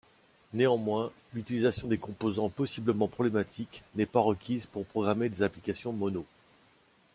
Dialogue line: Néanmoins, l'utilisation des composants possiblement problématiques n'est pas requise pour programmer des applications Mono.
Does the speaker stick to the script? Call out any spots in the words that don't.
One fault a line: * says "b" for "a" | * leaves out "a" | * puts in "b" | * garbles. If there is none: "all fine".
all fine